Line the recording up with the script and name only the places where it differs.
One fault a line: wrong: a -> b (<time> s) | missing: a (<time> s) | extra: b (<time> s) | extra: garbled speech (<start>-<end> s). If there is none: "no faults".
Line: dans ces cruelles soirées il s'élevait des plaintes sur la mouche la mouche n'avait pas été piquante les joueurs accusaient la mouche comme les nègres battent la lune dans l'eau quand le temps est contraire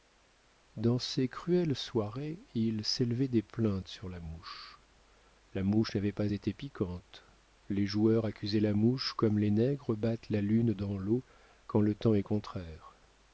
no faults